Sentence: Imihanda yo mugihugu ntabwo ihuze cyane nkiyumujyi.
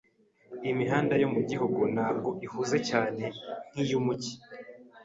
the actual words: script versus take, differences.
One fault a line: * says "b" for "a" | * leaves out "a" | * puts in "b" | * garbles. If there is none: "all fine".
all fine